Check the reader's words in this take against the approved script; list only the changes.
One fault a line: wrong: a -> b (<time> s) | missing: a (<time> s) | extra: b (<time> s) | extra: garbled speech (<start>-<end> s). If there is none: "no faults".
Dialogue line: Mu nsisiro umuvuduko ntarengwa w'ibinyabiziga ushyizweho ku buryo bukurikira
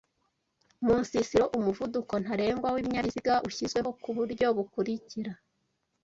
no faults